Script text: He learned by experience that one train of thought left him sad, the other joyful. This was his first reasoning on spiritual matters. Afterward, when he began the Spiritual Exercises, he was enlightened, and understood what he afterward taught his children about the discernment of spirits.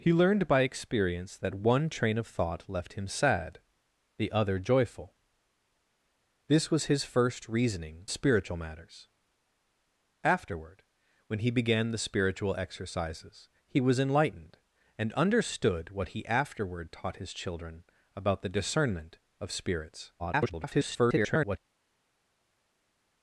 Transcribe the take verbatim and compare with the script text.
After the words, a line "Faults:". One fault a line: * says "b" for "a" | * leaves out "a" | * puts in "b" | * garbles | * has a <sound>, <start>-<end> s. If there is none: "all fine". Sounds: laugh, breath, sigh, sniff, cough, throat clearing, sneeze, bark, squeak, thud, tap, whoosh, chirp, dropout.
He learned by experience that one train of thought left him sad, the other joyful. This was his first reasoning spiritual matters. Afterward, when he began the Spiritual Exercises, he was enlightened, and understood what he afterward taught his children about the discernment of spirits. [garbled]
Faults:
* leaves out "on"
* garbles